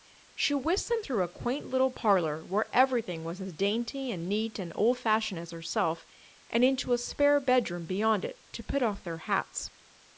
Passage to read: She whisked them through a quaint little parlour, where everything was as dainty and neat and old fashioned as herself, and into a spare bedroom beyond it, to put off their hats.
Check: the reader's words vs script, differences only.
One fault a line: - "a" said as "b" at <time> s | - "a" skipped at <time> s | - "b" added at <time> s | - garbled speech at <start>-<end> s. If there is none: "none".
none